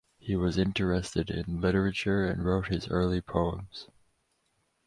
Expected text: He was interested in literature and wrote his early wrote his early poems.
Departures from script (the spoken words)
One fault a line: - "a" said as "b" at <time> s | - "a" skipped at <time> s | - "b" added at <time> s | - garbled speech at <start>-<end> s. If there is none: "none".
- "wrote his early" skipped at 3.2 s